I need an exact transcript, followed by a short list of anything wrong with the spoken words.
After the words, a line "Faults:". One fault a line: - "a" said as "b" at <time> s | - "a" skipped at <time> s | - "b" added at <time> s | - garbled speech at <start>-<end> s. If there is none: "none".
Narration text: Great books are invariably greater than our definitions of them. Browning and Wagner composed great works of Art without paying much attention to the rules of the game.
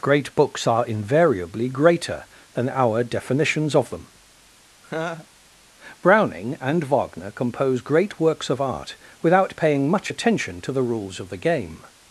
Great books are invariably greater than our definitions of them. Browning and Wagner compose great works of Art without paying much attention to the rules of the game.
Faults:
- "composed" said as "compose" at 7.3 s